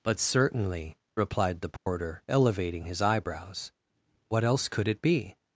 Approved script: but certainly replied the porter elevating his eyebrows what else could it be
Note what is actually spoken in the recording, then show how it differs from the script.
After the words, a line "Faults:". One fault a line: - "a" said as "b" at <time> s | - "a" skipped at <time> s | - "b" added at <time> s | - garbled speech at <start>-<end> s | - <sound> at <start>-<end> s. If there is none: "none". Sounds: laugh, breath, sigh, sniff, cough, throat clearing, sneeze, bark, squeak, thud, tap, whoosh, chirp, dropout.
but certainly replied the porter elevating his eyebrows what else could it be
Faults:
- dropout at 1.8-1.9 s